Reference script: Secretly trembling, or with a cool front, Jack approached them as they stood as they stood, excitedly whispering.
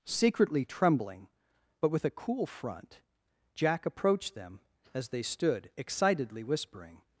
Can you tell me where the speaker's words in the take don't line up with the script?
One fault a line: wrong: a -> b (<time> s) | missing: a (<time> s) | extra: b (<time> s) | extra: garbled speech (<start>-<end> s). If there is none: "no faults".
wrong: or -> but (1.8 s)
missing: as they stood (5.7 s)